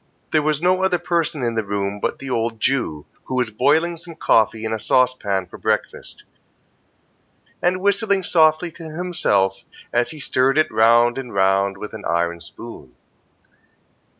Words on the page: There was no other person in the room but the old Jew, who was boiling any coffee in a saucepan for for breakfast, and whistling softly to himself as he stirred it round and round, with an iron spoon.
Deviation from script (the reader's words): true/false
true